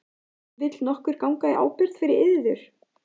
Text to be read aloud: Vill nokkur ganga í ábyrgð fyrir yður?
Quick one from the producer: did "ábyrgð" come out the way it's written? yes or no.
yes